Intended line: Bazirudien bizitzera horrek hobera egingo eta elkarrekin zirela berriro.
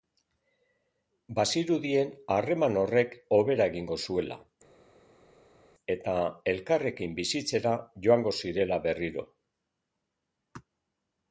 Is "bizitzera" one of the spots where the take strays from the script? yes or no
yes